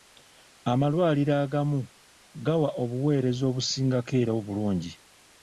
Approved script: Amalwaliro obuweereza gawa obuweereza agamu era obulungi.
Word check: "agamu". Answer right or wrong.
wrong